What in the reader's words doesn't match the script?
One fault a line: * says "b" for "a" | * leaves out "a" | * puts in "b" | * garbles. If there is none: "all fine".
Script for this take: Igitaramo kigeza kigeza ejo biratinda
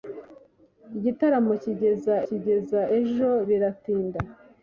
all fine